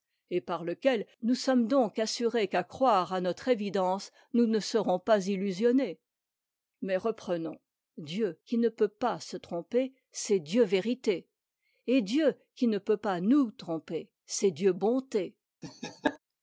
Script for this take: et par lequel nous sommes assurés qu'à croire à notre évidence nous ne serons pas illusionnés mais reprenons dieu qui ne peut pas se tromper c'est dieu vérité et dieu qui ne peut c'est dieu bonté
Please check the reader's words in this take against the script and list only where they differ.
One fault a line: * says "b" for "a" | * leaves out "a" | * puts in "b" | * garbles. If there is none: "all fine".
* puts in "donc"
* puts in "pas nous tromper"